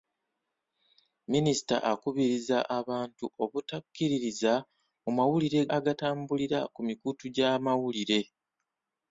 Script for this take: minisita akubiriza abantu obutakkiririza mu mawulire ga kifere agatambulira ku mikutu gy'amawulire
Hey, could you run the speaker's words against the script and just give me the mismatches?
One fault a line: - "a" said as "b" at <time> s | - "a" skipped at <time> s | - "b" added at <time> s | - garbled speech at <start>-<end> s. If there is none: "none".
- "ga kifere" skipped at 5.6 s